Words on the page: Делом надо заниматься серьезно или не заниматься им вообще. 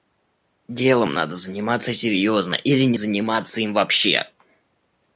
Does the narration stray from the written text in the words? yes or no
no